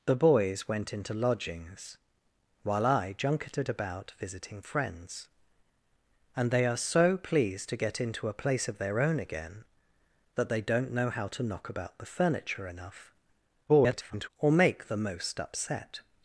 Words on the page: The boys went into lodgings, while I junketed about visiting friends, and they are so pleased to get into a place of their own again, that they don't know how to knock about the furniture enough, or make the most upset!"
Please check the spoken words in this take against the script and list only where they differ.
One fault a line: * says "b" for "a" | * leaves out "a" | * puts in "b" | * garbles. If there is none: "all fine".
* garbles